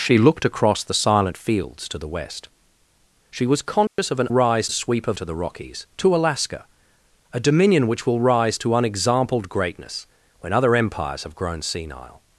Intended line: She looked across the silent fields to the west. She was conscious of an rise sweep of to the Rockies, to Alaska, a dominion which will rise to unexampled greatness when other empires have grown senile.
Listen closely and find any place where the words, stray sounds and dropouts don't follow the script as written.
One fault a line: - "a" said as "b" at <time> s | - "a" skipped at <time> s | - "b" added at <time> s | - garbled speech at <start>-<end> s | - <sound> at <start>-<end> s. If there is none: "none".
- dropout at 3.9-4.0 s